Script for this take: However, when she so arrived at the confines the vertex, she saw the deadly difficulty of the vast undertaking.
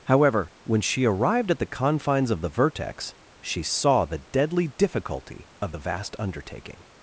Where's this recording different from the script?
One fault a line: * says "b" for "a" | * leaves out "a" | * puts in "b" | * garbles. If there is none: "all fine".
* leaves out "so"
* puts in "of"